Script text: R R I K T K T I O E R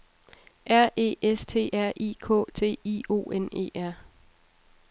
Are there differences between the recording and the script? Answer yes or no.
yes